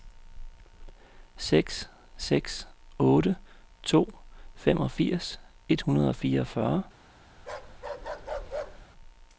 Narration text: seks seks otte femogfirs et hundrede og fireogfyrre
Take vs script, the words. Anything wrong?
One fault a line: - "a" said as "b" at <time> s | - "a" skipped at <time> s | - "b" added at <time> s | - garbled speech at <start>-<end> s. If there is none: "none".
- "to" added at 3.8 s